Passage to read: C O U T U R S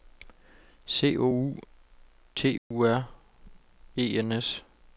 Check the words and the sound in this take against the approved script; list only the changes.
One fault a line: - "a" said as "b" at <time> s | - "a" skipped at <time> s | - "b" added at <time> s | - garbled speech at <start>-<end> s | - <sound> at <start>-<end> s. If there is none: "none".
- dropout at 2.6-2.7 s
- "E N" added at 4.0 s